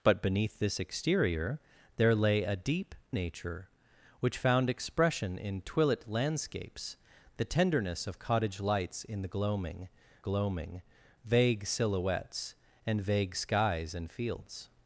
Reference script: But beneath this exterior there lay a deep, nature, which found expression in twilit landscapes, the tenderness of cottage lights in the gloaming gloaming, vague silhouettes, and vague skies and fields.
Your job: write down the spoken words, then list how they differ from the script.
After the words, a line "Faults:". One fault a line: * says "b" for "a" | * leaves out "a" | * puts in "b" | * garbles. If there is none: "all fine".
But beneath this exterior there lay a deep, nature, which found expression in twilit landscapes, the tenderness of cottage lights in the gloaming gloaming, vague silhouettes, and vague skies and fields.
Faults:
all fine